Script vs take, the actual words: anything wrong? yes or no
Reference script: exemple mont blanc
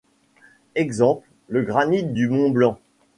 yes